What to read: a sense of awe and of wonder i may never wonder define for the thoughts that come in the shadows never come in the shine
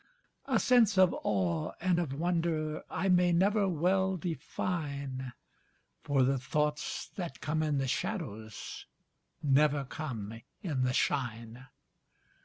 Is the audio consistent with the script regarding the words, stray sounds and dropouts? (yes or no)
no